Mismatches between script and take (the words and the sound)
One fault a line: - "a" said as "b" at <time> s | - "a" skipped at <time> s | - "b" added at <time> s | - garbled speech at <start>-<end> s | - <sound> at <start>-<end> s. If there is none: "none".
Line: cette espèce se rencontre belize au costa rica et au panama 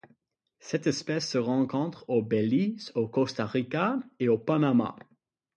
- "au" added at 2.1 s